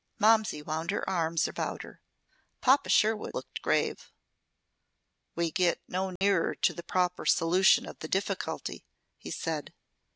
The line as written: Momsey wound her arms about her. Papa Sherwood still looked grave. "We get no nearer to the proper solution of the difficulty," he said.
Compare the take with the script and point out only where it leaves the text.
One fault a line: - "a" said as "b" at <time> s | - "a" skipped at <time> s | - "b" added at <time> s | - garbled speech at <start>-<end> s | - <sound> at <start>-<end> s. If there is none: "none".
- "still" skipped at 3.4 s
- dropout at 6.2-6.2 s